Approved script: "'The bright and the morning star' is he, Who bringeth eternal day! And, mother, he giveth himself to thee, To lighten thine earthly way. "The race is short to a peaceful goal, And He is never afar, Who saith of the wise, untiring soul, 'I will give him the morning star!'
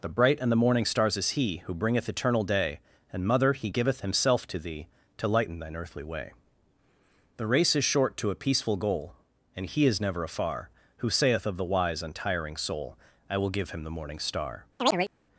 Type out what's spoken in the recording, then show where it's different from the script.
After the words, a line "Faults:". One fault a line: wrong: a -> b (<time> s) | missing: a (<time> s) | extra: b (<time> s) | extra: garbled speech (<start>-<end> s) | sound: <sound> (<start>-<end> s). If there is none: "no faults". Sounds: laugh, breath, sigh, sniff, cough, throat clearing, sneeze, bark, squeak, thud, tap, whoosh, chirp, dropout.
"'The bright and the morning stars' is he, Who bringeth eternal day! And, mother, he giveth himself to thee, To lighten thine earthly way. "The race is short to a peaceful goal, And He is never afar, Who saith of the wise, untiring soul, 'I will give him the morning star!'
Faults:
wrong: star -> stars (0.8 s)
sound: chirp (14.8-15.1 s)